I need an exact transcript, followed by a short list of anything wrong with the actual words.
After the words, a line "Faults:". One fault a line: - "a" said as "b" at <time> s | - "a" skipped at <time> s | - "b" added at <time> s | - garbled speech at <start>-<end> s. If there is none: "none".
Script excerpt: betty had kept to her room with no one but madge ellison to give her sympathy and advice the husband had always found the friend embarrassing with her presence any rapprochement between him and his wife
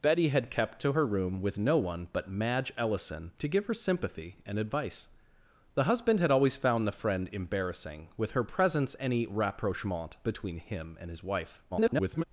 betty had kept to her room with no one but madge ellison to give her sympathy and advice the husband had always found the friend embarrassing with her presence any rapprochement between him and his wife [garbled]
Faults:
- garbled speech at 11.7-12.2 s